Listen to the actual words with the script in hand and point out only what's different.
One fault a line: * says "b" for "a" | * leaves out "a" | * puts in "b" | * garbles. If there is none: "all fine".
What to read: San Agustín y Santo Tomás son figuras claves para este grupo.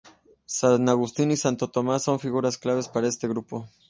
all fine